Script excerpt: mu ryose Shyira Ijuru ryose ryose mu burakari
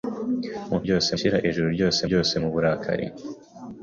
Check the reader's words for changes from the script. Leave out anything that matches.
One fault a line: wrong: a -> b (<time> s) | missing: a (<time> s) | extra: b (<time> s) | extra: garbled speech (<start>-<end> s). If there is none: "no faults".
no faults